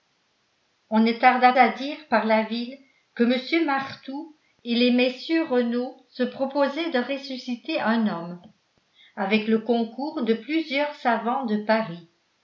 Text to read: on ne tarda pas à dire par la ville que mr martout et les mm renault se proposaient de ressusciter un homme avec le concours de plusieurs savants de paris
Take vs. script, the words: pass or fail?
fail